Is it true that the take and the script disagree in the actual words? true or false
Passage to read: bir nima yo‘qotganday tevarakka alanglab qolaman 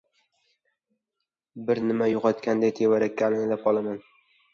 false